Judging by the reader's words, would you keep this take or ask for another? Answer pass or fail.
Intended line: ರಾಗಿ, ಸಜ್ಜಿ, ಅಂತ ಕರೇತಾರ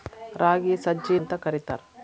pass